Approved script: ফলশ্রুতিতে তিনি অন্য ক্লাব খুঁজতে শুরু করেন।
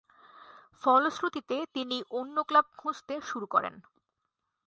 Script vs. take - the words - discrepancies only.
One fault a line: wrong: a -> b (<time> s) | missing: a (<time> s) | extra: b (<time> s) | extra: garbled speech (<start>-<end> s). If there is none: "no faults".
no faults